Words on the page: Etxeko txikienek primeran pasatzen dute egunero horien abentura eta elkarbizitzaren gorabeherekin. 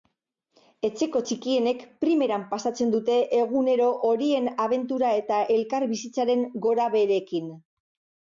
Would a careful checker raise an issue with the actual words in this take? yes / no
no